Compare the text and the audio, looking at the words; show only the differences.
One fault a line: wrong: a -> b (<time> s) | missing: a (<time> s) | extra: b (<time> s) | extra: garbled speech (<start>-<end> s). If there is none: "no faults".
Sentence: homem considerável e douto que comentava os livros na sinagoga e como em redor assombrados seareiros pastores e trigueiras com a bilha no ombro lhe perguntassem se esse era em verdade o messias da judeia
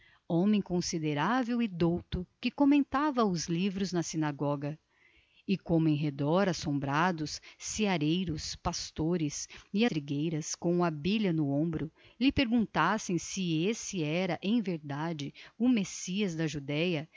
no faults